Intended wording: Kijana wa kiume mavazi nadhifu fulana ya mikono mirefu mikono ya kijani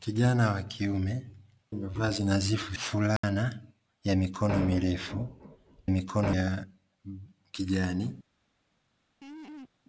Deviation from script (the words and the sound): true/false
true